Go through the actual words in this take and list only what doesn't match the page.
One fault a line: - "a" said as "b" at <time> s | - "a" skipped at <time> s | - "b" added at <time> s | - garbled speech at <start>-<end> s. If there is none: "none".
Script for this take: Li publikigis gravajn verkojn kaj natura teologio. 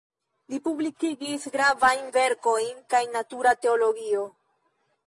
none